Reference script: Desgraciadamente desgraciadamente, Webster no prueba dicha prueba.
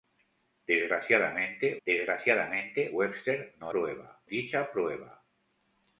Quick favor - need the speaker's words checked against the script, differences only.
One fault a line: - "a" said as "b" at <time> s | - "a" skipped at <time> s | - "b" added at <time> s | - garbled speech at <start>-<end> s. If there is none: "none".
none